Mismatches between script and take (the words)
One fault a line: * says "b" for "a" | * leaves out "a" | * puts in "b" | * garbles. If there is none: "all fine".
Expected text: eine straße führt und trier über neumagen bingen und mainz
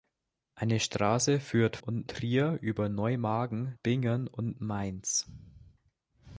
all fine